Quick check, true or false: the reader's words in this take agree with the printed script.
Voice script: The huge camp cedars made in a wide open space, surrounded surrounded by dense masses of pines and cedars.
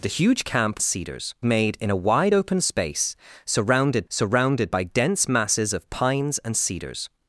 true